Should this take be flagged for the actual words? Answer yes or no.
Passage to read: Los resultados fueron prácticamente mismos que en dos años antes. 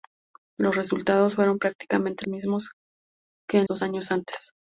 no